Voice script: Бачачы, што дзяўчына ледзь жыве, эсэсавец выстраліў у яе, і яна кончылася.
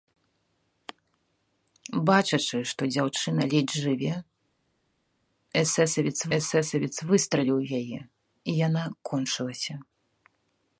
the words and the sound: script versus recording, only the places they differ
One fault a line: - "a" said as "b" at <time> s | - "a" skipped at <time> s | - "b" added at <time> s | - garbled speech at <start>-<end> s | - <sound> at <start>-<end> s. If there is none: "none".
- "эсэсавец" added at 6.4 s